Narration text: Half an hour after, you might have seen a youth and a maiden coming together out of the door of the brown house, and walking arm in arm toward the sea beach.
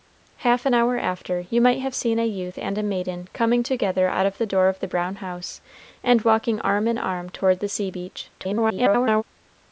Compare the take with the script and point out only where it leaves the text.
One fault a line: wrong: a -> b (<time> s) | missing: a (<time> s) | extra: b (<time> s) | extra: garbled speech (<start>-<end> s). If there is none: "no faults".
extra: garbled speech (8.4-9.2 s)